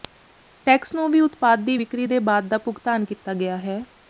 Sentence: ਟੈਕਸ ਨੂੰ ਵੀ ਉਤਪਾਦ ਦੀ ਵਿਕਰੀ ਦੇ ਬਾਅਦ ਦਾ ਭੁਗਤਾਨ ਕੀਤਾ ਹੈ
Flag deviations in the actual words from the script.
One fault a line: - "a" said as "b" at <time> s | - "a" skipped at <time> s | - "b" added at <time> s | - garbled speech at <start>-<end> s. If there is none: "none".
- "ਗਿਆ" added at 3.3 s